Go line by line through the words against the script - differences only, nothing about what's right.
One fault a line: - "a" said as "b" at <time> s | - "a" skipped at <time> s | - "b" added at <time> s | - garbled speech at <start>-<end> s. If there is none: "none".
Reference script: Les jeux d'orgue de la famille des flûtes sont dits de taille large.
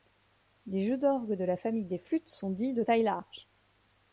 none